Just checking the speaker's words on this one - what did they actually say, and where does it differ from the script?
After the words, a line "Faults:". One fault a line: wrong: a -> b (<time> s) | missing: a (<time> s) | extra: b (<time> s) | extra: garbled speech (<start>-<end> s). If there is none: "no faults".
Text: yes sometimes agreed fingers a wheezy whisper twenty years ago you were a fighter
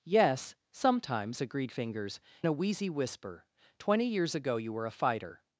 yes sometimes agreed fingers a wheezy whisper twenty years ago you were a fighter
Faults:
no faults